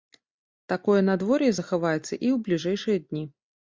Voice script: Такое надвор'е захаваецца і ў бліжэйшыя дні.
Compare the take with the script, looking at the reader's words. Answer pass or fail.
pass